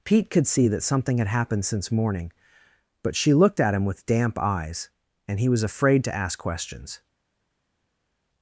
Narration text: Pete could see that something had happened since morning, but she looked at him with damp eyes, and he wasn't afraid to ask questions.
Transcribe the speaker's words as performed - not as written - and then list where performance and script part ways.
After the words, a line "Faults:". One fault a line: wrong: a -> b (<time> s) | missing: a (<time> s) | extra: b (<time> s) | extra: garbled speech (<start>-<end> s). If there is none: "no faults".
Pete could see that something had happened since morning, but she looked at him with damp eyes, and he was afraid to ask questions.
Faults:
wrong: wasn't -> was (5.5 s)